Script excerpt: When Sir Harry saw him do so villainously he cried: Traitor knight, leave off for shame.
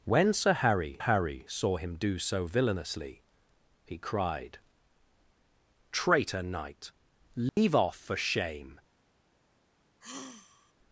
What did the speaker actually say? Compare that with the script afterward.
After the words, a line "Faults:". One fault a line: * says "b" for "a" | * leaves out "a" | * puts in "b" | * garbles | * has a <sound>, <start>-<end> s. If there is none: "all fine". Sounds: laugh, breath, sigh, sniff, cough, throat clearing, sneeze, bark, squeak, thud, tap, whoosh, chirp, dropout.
When Sir Harry Harry saw him do so villainously he cried: Traitor knight, leave off for shame.
Faults:
* puts in "Harry"
* has a dropout, 7.5-7.6 s
* has a sigh, 10.0-10.7 s